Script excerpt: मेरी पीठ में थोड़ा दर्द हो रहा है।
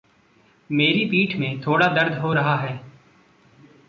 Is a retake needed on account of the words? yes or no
no